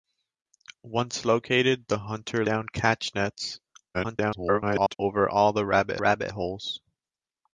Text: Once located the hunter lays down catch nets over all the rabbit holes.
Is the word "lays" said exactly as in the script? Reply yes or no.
no